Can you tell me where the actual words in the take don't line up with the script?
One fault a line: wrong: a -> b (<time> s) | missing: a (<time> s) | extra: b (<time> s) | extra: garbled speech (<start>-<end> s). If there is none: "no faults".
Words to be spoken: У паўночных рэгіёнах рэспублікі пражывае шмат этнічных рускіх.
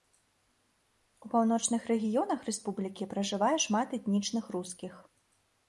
no faults